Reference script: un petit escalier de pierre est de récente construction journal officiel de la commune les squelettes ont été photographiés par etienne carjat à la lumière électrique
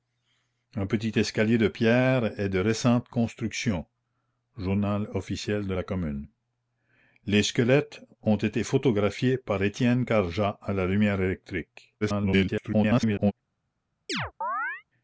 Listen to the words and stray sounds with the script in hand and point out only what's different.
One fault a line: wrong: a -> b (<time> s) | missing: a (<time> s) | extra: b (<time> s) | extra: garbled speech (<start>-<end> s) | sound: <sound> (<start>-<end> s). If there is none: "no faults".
extra: garbled speech (12.0-13.3 s)
sound: chirp (14.1-14.8 s)